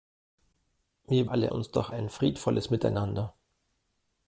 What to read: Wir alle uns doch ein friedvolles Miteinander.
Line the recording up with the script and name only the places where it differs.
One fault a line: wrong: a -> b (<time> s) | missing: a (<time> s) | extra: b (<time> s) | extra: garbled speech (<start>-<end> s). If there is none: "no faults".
no faults